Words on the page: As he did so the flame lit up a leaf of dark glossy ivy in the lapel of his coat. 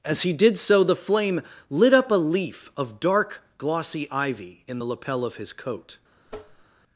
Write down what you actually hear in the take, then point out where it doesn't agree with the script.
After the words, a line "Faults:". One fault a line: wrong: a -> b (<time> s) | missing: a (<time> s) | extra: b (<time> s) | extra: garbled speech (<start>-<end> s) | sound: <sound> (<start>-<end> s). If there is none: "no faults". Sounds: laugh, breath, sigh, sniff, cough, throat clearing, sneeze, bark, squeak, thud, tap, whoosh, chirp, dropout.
As he did so the flame lit up a leaf of dark glossy ivy in the lapel of his coat.
Faults:
sound: tap (6.3-6.7 s)